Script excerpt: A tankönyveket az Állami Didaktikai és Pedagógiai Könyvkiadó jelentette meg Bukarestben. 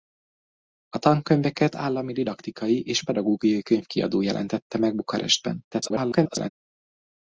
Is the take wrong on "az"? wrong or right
wrong